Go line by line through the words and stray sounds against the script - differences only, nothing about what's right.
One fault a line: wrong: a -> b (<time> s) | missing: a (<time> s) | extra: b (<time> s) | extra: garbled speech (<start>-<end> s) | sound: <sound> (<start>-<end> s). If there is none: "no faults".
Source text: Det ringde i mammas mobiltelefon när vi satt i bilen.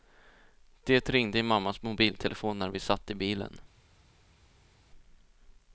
no faults